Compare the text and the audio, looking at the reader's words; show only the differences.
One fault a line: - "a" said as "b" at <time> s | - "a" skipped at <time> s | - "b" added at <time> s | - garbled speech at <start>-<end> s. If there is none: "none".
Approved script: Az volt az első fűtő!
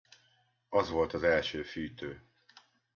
none